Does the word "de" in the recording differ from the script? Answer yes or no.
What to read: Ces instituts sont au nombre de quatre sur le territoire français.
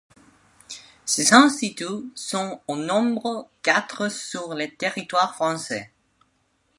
yes